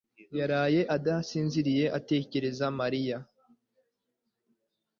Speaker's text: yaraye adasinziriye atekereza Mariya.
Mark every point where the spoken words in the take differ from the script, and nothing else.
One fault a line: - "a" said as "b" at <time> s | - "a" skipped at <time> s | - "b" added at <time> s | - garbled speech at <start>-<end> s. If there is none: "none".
none